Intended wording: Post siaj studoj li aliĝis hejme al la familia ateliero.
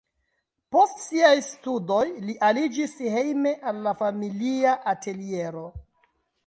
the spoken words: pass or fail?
pass